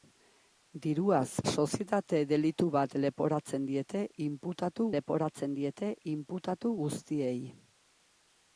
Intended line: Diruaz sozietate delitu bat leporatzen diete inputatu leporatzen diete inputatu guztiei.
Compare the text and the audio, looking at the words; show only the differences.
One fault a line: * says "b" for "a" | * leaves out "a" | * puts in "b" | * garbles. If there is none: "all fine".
all fine